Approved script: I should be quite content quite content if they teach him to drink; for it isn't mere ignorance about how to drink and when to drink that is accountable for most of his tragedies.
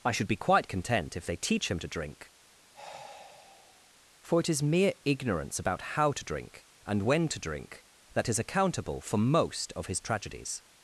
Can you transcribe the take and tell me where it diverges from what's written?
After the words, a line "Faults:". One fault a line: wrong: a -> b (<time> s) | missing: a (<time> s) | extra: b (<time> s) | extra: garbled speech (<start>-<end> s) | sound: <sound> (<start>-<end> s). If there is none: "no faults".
I should be quite content if they teach him to drink; for it is mere ignorance about how to drink and when to drink that is accountable for most of his tragedies.
Faults:
missing: quite content (1.1 s)
sound: sigh (2.7-3.9 s)
wrong: isn't -> is (4.5 s)